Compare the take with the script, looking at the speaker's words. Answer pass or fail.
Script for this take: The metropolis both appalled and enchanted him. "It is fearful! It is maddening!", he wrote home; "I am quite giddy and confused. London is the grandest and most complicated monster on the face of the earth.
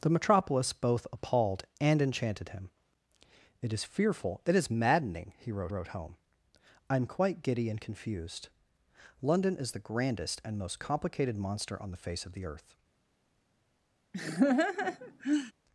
fail